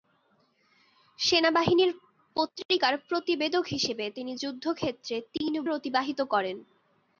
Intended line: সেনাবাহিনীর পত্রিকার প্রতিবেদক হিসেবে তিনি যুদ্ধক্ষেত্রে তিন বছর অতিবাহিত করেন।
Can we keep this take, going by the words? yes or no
no